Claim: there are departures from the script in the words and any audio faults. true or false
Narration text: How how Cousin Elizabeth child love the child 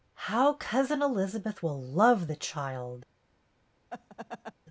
true